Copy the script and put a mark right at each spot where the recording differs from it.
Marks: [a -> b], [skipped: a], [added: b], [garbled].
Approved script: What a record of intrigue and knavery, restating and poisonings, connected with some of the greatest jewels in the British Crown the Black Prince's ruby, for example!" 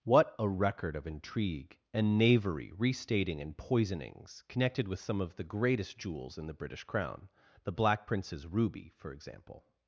What a record of intrigue and knavery, restating and poisonings, connected with some of the greatest jewels in the British Crown the Black Prince's ruby, for example!"